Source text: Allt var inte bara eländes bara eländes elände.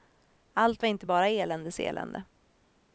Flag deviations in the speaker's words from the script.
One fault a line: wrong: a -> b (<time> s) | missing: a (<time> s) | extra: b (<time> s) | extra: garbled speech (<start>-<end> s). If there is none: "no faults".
missing: bara eländes (1.8 s)